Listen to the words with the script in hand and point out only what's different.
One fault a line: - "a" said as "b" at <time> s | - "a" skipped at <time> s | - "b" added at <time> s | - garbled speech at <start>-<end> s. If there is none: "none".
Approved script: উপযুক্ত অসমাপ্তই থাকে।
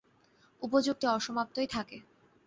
none